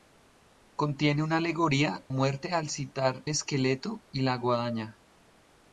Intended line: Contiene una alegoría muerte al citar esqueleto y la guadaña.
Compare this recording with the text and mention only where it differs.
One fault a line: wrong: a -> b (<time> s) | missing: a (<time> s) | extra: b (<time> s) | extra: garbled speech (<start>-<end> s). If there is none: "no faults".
no faults